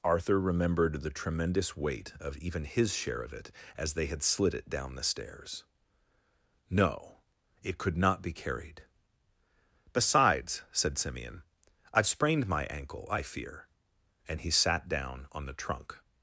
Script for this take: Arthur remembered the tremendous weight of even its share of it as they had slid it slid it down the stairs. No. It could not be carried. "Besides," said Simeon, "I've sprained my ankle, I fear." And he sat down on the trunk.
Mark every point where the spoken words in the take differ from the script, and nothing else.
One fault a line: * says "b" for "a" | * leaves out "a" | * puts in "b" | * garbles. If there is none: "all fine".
* says "his" for "its"
* leaves out "slid it"